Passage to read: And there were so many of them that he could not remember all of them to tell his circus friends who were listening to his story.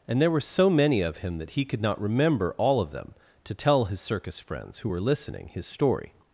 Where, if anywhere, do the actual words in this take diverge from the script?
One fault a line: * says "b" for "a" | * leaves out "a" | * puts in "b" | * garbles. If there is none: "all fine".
* says "him" for "them"
* leaves out "to"